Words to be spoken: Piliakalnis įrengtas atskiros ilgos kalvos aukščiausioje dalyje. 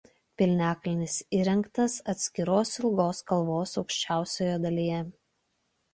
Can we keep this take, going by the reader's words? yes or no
yes